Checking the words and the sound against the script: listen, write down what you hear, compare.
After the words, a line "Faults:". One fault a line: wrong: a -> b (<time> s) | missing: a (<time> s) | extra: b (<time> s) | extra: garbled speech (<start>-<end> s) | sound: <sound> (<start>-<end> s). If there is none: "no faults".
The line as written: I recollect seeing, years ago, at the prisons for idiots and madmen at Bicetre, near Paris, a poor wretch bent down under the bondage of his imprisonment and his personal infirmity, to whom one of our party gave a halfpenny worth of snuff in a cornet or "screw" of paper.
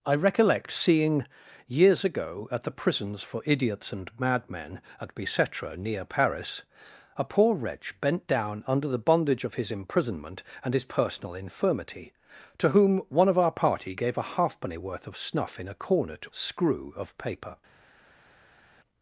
I recollect seeing, years ago, at the prisons for idiots and madmen at Bicetre, near Paris, a poor wretch bent down under the bondage of his imprisonment and his personal infirmity, to whom one of our party gave a halfpenny worth of snuff in a cornet "screw" of paper.
Faults:
missing: or (16.2 s)